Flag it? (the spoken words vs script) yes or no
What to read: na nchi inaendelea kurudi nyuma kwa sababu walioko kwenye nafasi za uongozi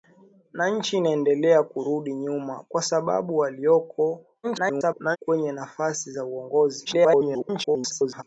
yes